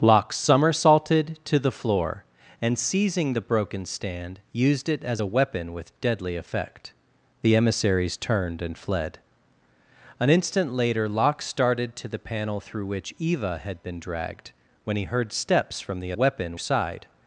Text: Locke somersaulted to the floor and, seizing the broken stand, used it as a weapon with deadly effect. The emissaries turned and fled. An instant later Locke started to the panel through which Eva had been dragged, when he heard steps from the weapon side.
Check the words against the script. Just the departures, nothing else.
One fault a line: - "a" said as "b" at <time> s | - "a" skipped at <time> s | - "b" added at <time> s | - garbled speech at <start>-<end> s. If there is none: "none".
none